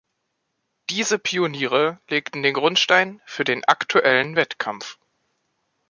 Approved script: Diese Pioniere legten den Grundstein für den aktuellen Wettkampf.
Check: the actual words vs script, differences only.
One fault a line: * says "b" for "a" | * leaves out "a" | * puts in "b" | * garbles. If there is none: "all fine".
all fine